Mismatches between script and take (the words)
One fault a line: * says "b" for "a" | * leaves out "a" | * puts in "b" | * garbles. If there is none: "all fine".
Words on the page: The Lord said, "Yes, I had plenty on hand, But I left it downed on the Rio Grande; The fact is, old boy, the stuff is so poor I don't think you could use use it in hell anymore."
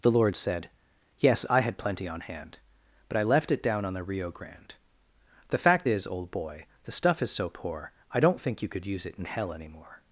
* says "down" for "downed"
* leaves out "use"